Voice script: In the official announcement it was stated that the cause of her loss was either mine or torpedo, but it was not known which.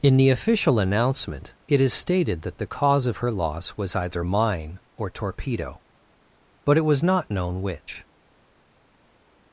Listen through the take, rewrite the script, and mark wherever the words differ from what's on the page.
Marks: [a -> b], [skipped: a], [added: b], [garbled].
In the official announcement it [was -> is] stated that the cause of her loss was either mine or torpedo, but it was not known which.